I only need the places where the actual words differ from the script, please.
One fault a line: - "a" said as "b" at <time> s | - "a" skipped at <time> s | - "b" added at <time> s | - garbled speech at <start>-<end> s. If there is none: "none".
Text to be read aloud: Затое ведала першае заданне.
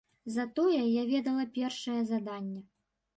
- "я" added at 0.8 s